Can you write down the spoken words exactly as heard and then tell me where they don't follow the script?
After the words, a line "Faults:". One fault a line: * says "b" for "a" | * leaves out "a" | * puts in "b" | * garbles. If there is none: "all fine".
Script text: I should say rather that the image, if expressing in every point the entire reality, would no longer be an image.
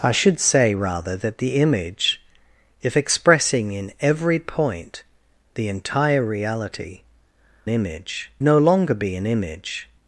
I should say rather that the image, if expressing in every point the entire reality, image no longer be an image.
Faults:
* says "image" for "would"